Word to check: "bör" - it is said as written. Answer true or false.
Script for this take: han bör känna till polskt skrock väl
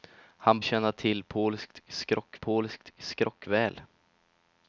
false